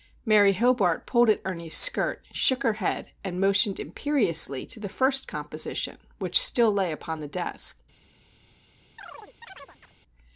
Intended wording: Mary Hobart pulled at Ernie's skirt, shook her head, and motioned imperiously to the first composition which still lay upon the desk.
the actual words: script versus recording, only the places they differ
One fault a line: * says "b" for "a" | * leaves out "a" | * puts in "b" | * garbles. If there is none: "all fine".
all fine